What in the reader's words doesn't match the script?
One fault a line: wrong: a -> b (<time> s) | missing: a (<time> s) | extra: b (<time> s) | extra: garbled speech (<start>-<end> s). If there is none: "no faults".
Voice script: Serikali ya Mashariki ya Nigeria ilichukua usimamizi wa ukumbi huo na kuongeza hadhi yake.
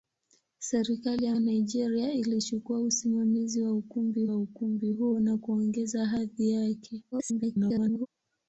missing: Mashariki (1.4 s)
extra: wa ukumbi (4.2 s)
extra: garbled speech (7.1-8.1 s)